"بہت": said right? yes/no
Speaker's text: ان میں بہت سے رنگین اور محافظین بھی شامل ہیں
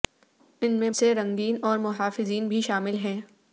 no